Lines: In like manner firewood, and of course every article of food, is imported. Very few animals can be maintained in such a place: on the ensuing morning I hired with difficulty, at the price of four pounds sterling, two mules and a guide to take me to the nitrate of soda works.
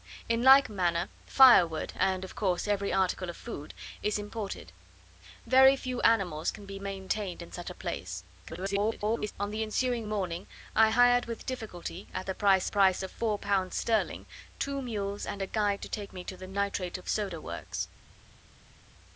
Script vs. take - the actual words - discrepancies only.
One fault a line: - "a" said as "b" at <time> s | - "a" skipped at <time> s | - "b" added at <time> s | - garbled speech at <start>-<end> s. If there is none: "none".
- garbled speech at 8.4-9.3 s
- "price" added at 12.7 s